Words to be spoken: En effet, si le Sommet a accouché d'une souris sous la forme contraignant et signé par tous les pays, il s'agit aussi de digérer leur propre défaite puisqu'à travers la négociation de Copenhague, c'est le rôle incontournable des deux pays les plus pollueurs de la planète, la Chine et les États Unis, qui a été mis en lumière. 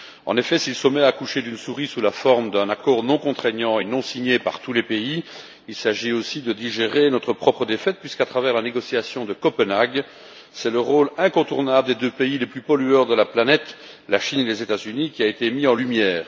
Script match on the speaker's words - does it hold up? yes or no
no